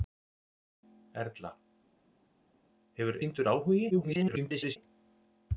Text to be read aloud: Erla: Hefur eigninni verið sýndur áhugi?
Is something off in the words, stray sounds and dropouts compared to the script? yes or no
yes